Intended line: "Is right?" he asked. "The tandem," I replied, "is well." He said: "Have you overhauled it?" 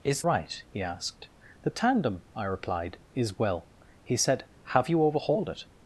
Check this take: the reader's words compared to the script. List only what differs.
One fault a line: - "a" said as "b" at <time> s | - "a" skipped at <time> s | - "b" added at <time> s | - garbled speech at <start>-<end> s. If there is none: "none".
none